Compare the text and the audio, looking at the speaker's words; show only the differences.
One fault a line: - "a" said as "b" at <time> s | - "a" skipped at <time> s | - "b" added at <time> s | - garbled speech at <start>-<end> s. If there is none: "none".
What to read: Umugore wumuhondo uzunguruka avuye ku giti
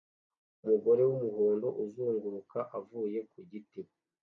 none